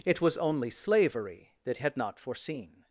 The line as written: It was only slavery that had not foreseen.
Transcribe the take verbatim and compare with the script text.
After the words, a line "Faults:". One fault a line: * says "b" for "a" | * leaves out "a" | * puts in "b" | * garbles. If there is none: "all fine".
It was only slavery that had not foreseen.
Faults:
all fine